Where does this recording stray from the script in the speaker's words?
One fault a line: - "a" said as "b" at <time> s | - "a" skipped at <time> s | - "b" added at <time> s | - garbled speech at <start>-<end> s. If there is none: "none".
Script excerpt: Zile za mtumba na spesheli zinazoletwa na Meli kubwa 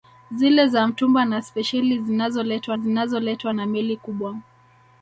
- "zinazoletwa" added at 2.8 s